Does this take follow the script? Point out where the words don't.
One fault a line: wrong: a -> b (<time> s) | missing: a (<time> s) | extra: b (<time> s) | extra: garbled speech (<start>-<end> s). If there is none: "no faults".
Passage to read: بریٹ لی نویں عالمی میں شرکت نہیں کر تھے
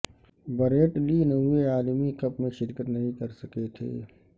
extra: کپ (2.2 s)
extra: سکے (3.4 s)